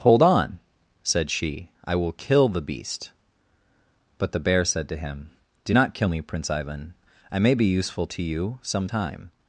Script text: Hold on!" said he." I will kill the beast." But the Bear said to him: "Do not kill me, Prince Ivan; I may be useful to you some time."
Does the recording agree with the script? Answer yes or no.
no